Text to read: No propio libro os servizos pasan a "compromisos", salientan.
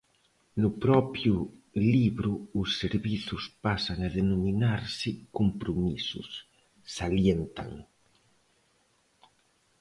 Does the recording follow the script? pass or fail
fail